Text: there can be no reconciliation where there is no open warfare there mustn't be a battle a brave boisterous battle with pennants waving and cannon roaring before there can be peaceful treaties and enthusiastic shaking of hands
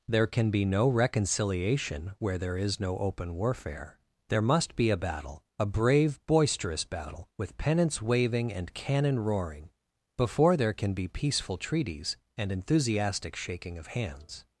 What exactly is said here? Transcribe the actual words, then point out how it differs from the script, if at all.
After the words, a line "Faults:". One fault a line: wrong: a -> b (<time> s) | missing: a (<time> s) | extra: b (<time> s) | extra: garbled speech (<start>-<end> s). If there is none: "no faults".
there can be no reconciliation where there is no open warfare there must be a battle a brave boisterous battle with pennants waving and cannon roaring before there can be peaceful treaties and enthusiastic shaking of hands
Faults:
wrong: mustn't -> must (4.4 s)